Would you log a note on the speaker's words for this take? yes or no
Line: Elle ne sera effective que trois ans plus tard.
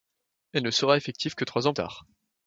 yes